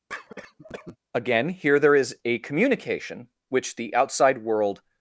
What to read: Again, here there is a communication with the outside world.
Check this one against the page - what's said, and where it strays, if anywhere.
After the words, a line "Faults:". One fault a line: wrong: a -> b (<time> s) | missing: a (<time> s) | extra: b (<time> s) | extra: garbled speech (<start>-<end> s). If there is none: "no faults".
Again, here there is a communication which the outside world.
Faults:
wrong: with -> which (3.5 s)